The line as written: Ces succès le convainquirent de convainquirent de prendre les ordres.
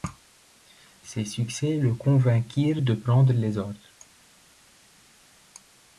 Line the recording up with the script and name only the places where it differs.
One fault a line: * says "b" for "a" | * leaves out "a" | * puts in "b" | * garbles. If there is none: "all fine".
* leaves out "convainquirent de"